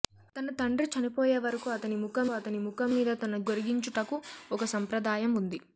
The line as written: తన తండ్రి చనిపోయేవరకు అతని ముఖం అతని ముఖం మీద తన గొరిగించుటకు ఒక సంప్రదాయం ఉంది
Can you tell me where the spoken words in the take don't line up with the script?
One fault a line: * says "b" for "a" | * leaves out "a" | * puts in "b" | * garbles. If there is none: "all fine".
all fine